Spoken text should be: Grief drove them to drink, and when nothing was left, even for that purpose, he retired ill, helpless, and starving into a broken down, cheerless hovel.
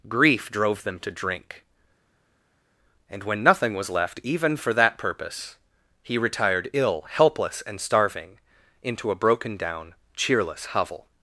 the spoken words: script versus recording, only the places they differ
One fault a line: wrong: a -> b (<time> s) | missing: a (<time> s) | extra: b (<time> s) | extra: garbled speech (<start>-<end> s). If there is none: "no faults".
no faults